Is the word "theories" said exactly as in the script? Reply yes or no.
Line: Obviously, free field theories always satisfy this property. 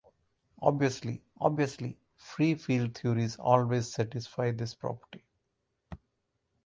yes